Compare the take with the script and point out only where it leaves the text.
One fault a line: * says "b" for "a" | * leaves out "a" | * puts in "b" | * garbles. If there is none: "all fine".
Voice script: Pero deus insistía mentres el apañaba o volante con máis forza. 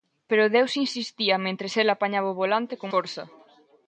* leaves out "máis"